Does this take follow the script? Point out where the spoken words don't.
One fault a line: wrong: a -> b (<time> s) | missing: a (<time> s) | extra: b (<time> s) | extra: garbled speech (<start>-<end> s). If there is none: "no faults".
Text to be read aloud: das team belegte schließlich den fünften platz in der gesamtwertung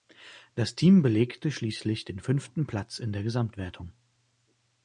no faults